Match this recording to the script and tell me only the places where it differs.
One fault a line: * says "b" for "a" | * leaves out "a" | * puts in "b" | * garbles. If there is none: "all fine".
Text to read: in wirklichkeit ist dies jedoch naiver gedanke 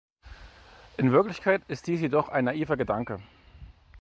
* puts in "ein"